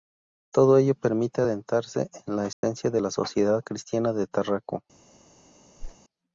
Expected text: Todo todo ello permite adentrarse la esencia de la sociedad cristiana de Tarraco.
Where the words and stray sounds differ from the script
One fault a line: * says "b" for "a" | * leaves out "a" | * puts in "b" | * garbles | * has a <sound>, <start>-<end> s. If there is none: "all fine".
* leaves out "todo"
* puts in "en"
* has a dropout, 2.5-2.6 s
* has a whoosh, 5.8-6.0 s